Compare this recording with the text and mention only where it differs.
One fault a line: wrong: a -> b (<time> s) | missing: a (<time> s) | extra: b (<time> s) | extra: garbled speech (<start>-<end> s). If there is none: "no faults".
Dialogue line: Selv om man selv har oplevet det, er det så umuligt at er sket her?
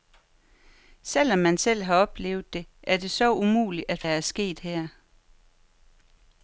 no faults